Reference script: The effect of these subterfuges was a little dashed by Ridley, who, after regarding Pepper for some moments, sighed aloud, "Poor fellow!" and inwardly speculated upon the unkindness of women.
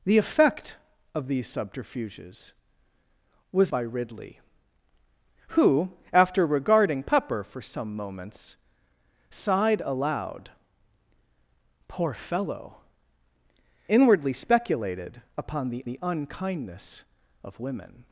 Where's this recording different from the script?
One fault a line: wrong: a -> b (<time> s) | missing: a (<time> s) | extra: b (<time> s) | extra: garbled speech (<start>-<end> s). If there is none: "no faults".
missing: a little dashed (3.7 s)
missing: and (12.8 s)
extra: the (15.8 s)